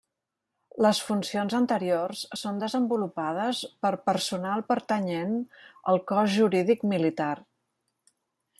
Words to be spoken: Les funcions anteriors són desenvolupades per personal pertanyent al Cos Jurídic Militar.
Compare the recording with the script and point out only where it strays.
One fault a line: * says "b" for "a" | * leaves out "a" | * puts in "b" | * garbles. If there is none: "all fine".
all fine